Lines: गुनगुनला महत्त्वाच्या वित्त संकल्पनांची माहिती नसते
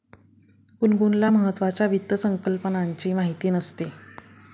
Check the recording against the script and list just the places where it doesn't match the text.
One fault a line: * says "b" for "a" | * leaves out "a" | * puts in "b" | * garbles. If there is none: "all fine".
all fine